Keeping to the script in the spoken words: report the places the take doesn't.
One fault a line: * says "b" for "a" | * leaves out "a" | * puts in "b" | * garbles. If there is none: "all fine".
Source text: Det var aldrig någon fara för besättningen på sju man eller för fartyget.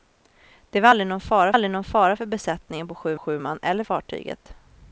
* puts in "aldrig någon fara"
* puts in "sju"
* leaves out "för"